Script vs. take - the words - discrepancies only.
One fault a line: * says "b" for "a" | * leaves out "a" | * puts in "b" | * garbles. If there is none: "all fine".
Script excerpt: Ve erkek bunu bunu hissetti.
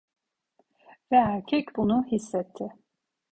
* leaves out "bunu"